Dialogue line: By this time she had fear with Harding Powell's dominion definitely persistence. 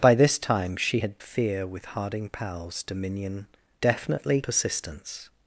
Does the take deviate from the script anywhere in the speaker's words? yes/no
no